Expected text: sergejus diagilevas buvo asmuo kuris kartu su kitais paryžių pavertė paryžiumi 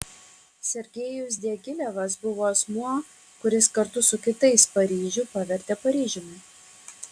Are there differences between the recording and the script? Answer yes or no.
no